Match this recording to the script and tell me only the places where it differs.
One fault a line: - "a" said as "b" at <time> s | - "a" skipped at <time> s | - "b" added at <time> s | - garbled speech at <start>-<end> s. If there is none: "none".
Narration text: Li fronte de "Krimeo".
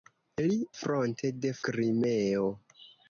none